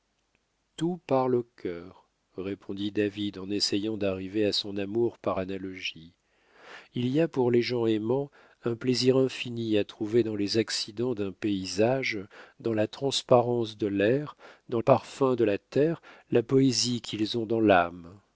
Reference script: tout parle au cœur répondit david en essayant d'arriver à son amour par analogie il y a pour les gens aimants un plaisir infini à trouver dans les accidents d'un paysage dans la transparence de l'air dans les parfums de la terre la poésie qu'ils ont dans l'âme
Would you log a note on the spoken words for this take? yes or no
yes